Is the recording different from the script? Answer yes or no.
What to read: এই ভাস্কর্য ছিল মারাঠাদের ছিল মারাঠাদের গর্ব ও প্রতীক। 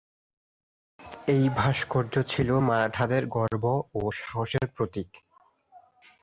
yes